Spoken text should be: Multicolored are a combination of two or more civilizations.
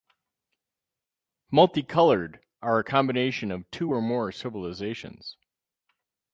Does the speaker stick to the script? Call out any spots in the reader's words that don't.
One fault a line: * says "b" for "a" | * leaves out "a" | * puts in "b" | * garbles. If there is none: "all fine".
all fine